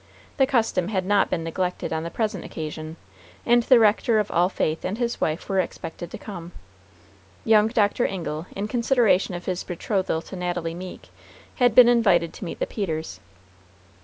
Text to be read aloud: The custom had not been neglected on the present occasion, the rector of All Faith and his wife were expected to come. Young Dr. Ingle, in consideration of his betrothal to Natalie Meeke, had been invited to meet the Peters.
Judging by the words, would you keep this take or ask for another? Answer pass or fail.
fail